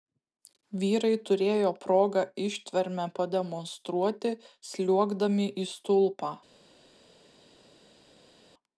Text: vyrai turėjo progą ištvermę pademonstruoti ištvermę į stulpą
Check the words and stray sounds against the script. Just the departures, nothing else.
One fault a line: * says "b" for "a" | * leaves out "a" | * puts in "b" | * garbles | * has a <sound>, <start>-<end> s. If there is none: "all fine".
* says "sliuogdami" for "ištvermę"